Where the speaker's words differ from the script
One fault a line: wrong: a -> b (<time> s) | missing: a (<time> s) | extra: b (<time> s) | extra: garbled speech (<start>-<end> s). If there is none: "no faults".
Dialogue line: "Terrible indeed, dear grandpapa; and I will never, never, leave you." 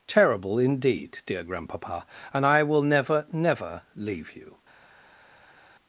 no faults